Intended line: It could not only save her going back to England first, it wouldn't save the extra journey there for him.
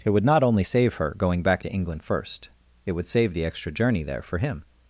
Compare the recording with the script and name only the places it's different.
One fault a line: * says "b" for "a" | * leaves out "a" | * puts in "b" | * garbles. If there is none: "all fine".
* says "would" for "could"
* says "would" for "wouldn't"